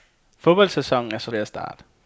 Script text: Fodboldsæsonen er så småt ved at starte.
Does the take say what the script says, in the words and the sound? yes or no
no